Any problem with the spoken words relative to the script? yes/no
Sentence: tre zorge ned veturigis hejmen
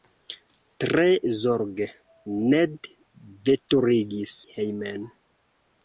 no